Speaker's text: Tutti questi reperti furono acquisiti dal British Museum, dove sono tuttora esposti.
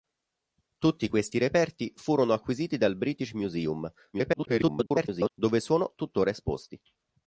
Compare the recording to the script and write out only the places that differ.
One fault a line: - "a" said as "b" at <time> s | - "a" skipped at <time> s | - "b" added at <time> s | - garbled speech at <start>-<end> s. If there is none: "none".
- garbled speech at 4.1-5.3 s